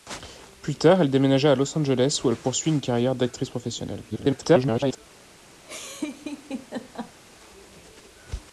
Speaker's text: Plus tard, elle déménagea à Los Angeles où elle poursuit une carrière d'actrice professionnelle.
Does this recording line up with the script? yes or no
no